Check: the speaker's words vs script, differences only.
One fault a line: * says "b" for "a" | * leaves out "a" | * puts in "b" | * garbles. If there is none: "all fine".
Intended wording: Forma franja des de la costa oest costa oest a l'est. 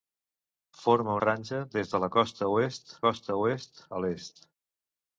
all fine